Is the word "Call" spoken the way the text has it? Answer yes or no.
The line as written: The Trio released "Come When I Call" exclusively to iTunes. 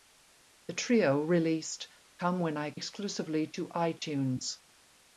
no